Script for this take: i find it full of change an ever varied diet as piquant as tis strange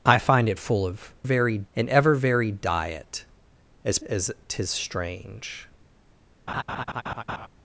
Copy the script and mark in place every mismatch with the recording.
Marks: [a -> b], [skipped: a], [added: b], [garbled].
i find it full of [change -> varied] an ever varied diet as [skipped: piquant] as tis strange